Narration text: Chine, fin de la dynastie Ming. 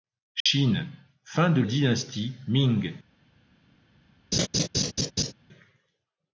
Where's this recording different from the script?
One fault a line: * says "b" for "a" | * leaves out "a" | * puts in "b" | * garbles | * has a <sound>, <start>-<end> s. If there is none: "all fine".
* has a dropout, 0.4-0.5 s
* leaves out "la"
* has a laugh, 4.3-5.3 s